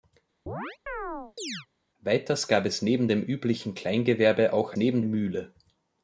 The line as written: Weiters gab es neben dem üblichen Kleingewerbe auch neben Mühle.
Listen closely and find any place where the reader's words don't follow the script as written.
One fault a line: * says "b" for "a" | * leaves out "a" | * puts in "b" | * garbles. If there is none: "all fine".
all fine